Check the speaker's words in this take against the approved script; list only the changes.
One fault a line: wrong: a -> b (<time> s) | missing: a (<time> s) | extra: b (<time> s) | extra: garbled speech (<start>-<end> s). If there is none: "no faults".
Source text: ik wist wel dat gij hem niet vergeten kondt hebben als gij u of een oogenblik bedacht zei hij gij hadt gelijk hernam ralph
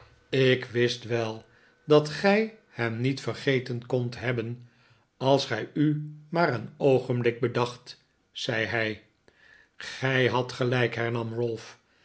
wrong: of -> maar (6.3 s)